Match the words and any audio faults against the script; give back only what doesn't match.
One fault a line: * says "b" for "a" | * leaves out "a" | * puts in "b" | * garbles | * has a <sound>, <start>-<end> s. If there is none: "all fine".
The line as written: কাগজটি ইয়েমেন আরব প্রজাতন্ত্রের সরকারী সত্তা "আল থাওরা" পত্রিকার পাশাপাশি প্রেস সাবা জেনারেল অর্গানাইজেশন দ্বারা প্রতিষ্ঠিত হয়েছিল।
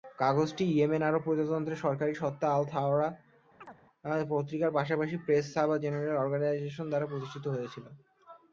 * has a chirp, 3.6-3.8 s